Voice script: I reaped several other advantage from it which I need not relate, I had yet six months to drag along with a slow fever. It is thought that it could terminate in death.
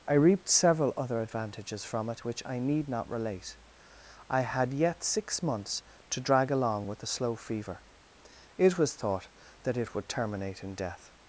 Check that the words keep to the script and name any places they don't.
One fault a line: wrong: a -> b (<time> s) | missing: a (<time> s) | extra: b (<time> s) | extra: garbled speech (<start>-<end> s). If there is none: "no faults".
wrong: advantage -> advantages (1.2 s)
wrong: is -> was (8.8 s)
wrong: could -> would (9.9 s)